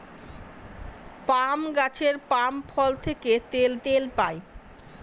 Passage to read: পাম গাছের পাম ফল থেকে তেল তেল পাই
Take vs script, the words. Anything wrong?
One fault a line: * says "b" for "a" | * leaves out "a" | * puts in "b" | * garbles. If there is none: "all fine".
all fine